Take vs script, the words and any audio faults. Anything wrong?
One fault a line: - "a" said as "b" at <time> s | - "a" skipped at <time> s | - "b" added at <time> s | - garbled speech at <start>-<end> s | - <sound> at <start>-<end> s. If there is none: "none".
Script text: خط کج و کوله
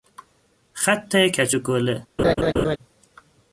- laugh at 2.2-2.8 s